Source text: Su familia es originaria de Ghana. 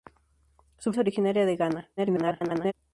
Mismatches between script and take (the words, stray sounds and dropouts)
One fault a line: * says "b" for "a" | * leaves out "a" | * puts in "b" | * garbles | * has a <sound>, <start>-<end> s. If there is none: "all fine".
* leaves out "familia"
* garbles